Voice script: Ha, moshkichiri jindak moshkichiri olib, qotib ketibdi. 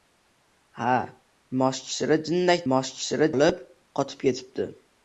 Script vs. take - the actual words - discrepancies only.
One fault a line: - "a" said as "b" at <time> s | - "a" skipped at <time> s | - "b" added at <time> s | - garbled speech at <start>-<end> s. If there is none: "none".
none